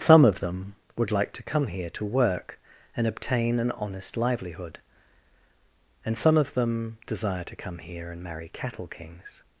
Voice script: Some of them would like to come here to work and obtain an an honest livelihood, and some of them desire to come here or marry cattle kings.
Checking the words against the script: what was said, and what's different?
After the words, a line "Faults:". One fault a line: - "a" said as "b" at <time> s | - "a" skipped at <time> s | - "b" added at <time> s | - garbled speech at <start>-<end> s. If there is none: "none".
Some of them would like to come here to work and obtain an honest livelihood, and some of them desire to come here and marry cattle kings.
Faults:
- "an" skipped at 3.7 s
- "or" said as "and" at 8.1 s